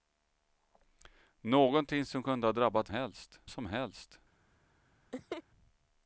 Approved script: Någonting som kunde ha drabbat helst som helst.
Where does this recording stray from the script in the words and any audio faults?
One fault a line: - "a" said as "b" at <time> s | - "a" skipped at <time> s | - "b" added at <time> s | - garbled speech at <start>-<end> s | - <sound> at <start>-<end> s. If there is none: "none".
- laugh at 5.1-5.4 s